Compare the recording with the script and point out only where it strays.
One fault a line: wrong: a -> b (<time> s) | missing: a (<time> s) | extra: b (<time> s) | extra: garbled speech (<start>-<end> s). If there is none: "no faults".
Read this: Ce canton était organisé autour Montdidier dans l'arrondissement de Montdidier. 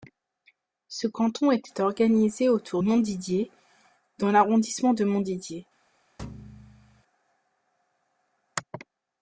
no faults